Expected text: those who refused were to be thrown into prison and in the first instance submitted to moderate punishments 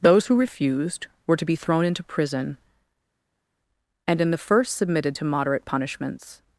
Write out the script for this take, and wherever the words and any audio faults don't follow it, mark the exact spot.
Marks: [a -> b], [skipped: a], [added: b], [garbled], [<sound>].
those who refused were to be thrown into prison and in the first [skipped: instance] submitted to moderate punishments